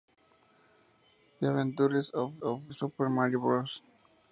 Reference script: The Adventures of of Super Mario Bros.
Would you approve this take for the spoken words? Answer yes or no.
yes